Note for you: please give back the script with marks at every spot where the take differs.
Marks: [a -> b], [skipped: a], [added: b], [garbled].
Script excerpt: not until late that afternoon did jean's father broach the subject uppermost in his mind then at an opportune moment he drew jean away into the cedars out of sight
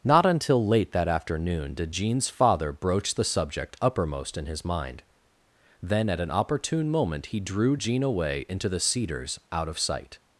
not until late that afternoon did jean's father broach the subject uppermost in his mind then at an opportune moment he drew jean away into the cedars out of sight